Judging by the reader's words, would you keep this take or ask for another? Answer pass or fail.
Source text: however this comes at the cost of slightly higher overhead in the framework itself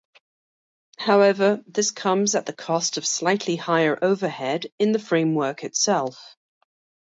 pass